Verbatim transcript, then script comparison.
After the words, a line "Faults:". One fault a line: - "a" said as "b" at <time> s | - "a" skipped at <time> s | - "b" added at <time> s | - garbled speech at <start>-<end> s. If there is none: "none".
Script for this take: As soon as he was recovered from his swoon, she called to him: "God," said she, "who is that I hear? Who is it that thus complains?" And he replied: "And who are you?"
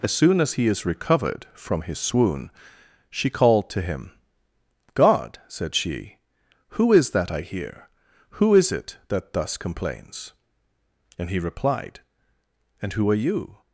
As soon as he is recovered from his swoon, she called to him: "God," said she, "who is that I hear? Who is it that thus complains?" And he replied: "And who are you?"
Faults:
- "was" said as "is" at 0.7 s